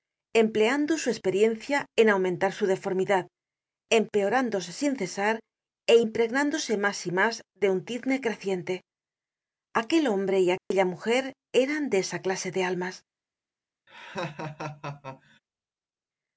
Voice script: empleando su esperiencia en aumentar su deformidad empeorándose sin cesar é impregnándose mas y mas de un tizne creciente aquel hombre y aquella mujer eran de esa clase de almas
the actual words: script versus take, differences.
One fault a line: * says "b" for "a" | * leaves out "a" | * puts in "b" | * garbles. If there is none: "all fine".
all fine